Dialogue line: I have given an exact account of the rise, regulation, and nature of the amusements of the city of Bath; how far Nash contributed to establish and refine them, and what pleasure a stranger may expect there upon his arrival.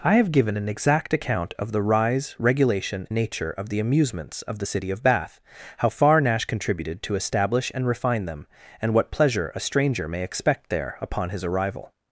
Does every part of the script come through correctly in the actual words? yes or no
no